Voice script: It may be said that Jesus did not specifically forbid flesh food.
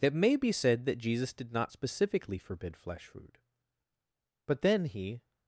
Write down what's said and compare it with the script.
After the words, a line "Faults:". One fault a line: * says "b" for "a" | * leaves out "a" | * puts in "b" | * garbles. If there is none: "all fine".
It may be said that Jesus did not specifically forbid flesh food. But then he
Faults:
* puts in "But then he"